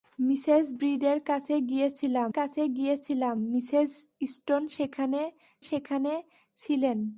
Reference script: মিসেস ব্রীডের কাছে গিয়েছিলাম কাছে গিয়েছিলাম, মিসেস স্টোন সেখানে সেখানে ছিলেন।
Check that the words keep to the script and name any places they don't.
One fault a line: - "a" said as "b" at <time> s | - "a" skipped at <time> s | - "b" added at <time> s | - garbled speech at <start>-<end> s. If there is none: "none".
none